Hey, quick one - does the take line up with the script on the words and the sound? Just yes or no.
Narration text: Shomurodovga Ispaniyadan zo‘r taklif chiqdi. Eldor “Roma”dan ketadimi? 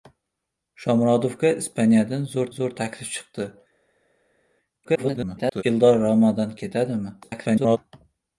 no